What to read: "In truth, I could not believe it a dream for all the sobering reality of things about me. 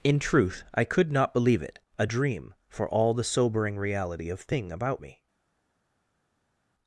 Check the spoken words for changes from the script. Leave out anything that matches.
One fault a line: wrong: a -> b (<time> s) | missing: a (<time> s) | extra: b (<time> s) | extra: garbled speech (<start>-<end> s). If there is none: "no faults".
wrong: things -> thing (4.4 s)